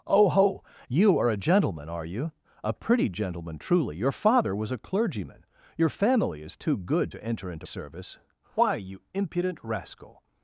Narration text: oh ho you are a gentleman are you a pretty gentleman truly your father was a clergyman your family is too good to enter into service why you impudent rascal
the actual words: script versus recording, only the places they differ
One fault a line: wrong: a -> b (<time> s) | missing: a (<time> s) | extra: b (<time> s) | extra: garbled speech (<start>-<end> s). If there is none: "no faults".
no faults